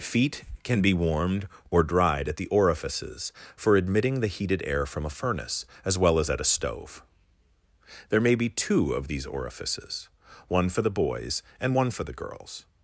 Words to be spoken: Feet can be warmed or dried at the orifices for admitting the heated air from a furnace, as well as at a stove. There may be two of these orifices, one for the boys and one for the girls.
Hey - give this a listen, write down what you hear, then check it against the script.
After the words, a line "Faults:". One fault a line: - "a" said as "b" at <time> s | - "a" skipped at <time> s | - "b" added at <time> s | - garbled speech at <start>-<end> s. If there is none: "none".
Feet can be warmed or dried at the orifices for admitting the heated air from a furnace, as well as at a stove. There may be two of these orifices, one for the boys and one for the girls.
Faults:
none